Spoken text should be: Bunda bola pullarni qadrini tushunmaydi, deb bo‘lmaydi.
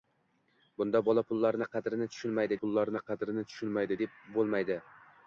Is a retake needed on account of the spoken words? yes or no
yes